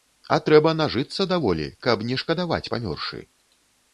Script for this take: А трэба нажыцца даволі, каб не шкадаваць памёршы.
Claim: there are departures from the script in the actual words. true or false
false